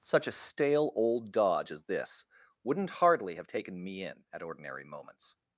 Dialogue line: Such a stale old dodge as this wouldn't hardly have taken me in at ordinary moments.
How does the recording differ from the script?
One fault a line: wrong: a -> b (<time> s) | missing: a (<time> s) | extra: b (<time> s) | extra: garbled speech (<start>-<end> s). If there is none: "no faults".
no faults